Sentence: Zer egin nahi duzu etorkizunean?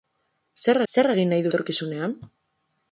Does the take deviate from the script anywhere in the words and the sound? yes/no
yes